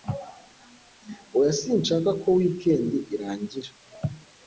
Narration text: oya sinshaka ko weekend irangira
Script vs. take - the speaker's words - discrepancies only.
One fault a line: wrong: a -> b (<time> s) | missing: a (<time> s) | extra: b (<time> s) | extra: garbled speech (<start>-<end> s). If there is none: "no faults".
no faults